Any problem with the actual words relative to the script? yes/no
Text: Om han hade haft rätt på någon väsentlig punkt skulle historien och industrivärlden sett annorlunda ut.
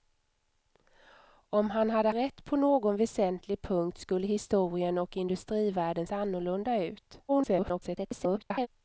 yes